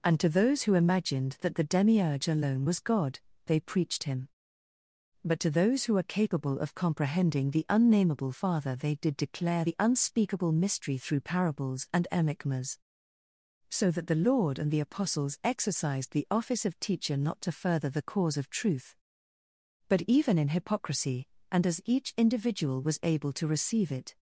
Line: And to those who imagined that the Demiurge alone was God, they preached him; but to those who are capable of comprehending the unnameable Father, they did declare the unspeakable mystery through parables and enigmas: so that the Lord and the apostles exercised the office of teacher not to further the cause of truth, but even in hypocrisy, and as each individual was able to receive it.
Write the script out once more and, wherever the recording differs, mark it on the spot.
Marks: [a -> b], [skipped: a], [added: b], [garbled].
And to those who imagined that the Demiurge alone was God, they preached him; but to those who are capable of comprehending the unnameable Father, they did declare the unspeakable mystery through parables and enigmas: so that the Lord and the apostles exercised the office of teacher not to further the cause of truth, but even in hypocrisy, and as each individual was able to receive it.